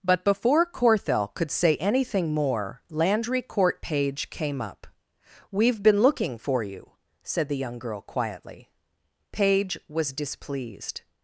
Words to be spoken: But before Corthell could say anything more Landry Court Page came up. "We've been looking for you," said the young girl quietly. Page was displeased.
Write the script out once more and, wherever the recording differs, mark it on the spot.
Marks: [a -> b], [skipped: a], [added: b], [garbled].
But before Corthell could say anything more Landry Court Page came up. "We've been looking for you," said the young girl quietly. Page was displeased.